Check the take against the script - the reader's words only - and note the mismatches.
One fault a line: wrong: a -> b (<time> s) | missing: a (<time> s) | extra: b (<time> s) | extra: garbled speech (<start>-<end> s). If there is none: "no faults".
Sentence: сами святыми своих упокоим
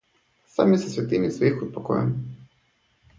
extra: со (0.8 s)